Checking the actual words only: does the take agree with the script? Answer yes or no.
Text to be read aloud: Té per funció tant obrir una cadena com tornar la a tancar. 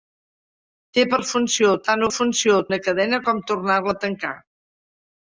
no